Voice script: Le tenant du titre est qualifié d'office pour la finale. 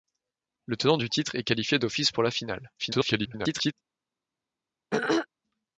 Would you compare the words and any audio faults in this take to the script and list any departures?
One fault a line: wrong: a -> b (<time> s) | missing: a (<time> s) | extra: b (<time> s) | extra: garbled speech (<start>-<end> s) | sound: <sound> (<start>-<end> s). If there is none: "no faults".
extra: garbled speech (2.8-3.7 s)
sound: throat clearing (4.9-5.3 s)